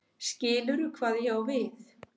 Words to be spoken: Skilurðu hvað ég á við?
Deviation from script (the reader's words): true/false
false